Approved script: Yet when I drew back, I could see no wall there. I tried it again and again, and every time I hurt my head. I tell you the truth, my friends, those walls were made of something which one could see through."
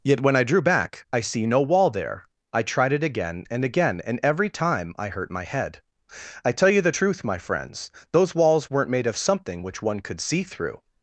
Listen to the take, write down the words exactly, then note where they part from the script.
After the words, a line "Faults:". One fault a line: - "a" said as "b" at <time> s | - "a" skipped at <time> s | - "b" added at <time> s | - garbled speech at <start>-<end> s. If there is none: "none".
Yet when I drew back, I see no wall there. I tried it again and again, and every time I hurt my head. I tell you the truth, my friends, those walls weren't made of something which one could see through."
Faults:
- "could" skipped at 1.2 s
- "were" said as "weren't" at 8.7 s